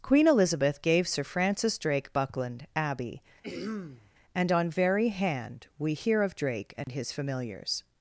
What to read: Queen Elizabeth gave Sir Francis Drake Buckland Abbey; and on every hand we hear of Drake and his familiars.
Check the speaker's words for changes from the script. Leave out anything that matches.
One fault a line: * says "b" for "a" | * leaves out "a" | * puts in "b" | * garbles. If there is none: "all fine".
* says "very" for "every"